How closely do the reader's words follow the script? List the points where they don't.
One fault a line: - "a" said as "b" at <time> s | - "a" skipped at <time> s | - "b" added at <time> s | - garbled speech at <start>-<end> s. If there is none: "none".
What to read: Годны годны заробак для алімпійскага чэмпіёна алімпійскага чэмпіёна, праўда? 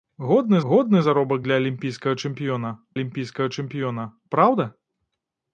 none